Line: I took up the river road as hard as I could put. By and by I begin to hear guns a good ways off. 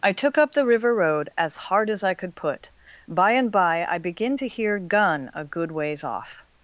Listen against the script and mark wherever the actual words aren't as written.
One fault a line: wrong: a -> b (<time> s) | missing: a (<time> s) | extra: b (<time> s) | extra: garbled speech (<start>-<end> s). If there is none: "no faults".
wrong: guns -> gun (4.8 s)